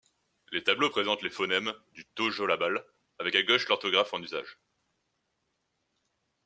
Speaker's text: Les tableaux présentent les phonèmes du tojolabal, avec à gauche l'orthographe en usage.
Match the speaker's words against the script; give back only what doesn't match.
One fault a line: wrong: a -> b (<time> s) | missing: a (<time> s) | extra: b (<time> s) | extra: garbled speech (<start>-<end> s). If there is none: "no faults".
no faults